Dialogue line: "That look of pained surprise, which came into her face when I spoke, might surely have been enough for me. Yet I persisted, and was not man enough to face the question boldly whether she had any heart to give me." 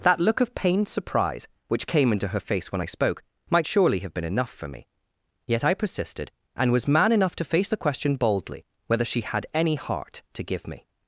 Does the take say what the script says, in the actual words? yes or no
no